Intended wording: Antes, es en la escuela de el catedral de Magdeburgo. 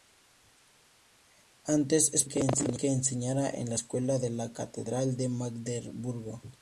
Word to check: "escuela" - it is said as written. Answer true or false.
true